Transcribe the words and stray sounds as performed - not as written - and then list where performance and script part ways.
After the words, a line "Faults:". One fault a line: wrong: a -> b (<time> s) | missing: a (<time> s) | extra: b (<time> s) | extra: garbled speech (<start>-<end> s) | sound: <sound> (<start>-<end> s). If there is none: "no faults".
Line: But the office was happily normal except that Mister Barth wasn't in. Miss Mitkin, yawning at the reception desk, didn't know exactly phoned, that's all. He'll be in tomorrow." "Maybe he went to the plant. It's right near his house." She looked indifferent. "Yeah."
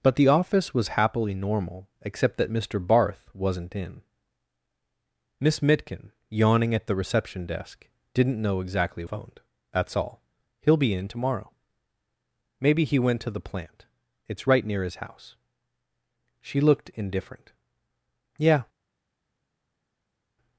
But the office was happily normal except that Mister Barth wasn't in. Miss Mitkin, yawning at the reception desk, didn't know exactly phoned, that's all. He'll be in tomorrow." "Maybe he went to the plant. It's right near his house." She looked indifferent. "Yeah."
Faults:
no faults